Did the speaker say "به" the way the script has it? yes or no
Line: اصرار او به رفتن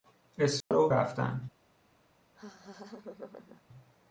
no